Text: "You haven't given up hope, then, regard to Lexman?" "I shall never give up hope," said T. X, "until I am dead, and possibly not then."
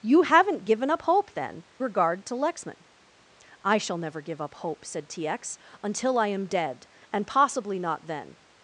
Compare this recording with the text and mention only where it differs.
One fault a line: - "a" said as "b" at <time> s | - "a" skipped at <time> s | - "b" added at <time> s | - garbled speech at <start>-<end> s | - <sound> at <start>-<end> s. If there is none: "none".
none